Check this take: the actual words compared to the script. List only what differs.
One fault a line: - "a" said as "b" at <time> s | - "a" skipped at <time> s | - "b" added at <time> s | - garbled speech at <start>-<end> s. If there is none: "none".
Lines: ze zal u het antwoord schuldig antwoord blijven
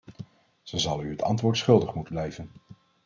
- "antwoord" said as "moeten" at 1.9 s